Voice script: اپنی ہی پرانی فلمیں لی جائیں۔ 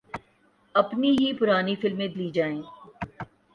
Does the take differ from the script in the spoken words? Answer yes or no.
no